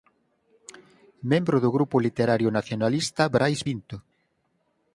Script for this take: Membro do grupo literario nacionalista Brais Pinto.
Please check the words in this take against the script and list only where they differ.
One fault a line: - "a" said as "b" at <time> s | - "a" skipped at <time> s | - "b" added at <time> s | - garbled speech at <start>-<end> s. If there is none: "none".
none